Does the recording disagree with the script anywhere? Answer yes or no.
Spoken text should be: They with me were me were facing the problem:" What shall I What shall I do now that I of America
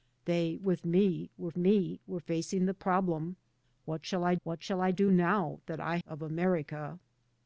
no